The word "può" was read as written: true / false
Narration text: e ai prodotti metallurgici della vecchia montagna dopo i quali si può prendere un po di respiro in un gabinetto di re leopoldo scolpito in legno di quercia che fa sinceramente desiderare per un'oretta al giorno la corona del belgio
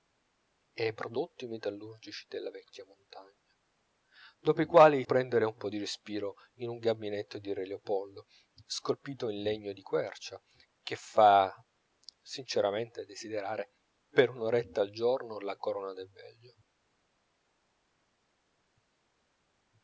false